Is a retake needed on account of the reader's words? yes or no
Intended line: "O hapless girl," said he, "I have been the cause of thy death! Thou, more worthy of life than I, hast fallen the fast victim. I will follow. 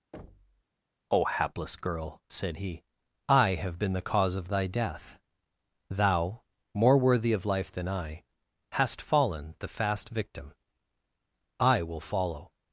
no